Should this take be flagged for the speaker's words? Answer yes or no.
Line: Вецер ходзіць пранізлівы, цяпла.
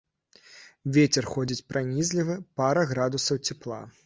yes